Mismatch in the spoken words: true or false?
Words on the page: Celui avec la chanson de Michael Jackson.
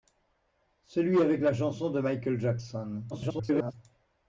true